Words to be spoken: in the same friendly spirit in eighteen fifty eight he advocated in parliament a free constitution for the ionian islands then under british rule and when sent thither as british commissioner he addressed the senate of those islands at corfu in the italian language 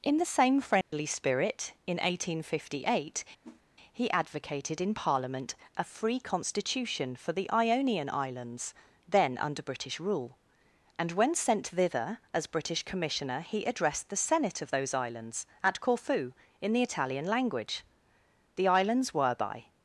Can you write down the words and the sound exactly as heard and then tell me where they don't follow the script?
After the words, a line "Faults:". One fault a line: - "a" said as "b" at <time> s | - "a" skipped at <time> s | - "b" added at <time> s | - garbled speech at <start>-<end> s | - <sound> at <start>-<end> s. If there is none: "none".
in the same friendly spirit in eighteen fifty eight he advocated in parliament a free constitution for the ionian islands then under british rule and when sent thither as british commissioner he addressed the senate of those islands at corfu in the italian language the islands were by
Faults:
- dropout at 0.8-0.9 s
- whoosh at 3.4-3.6 s
- "the islands were by" added at 18.5 s